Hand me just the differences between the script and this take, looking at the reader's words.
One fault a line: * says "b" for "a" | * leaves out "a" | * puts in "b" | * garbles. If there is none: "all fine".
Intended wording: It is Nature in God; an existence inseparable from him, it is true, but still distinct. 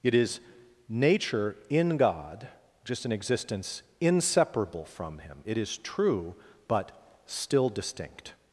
* puts in "just"